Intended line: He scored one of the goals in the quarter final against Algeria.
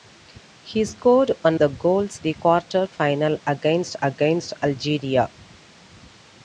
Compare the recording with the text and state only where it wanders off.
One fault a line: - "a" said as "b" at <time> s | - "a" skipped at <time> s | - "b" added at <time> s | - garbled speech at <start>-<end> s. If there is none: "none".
- "of" skipped at 1.6 s
- "in" skipped at 2.2 s
- "against" added at 4.0 s